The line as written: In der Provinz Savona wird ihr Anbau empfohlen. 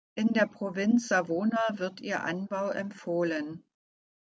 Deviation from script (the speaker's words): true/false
false